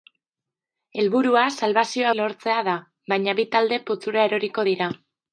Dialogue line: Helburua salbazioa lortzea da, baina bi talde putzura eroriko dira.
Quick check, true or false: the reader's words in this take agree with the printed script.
true